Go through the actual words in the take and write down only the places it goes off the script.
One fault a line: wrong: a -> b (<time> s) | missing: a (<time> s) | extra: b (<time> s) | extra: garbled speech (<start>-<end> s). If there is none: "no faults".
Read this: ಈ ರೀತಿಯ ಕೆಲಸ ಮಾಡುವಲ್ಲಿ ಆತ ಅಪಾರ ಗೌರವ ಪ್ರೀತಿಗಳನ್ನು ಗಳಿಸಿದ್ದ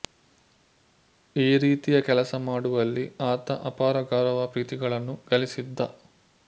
no faults